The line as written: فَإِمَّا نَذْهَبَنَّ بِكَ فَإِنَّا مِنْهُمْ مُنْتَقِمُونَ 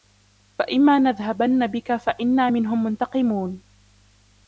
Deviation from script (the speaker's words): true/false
false